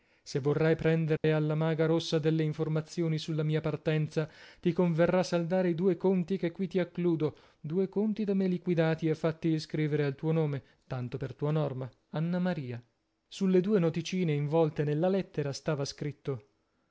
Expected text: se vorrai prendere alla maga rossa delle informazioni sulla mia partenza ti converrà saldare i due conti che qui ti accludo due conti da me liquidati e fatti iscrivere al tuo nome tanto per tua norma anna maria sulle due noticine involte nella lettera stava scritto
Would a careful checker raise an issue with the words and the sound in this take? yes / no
yes